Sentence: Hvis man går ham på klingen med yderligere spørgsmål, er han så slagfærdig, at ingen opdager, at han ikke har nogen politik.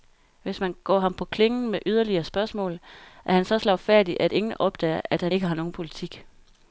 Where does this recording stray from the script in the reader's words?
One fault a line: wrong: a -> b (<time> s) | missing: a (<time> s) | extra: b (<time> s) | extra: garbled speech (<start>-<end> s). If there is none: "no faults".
no faults